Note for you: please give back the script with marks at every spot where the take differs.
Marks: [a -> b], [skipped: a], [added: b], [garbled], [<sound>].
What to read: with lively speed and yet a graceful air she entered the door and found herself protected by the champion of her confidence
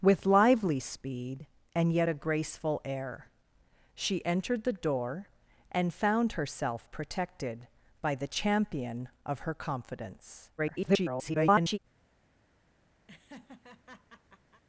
with lively speed and yet a graceful air she entered the door and found herself protected by the champion of her confidence [garbled] [laugh]